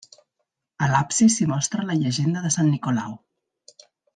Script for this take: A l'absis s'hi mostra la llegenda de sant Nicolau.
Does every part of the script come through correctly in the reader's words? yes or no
yes